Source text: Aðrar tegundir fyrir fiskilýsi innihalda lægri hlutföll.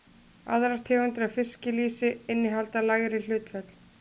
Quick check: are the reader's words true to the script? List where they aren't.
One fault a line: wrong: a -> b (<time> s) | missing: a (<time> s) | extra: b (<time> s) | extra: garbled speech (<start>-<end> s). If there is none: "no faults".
wrong: fyrir -> af (1.3 s)